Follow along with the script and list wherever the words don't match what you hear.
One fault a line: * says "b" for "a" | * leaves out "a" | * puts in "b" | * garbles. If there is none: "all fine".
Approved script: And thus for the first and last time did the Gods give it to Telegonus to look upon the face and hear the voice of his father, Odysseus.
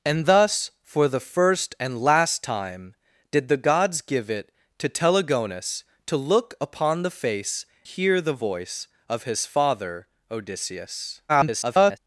* leaves out "and"
* garbles